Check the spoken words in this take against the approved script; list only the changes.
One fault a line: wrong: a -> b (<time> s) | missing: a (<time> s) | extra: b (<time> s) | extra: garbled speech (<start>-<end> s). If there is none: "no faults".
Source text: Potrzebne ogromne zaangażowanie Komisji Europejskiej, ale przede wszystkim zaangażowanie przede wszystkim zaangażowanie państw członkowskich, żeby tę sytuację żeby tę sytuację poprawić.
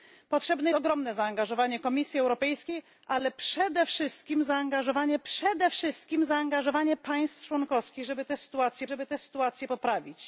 no faults